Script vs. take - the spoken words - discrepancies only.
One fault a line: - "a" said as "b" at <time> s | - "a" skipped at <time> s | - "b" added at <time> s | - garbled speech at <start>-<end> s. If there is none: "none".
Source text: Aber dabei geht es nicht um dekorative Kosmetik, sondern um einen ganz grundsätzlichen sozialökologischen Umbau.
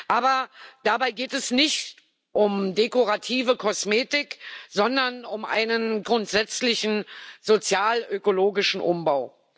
- "ganz" skipped at 6.0 s